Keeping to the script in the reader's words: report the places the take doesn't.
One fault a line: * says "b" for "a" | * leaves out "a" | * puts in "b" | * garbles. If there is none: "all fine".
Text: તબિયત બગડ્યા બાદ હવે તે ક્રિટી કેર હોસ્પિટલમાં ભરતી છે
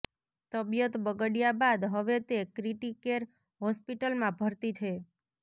all fine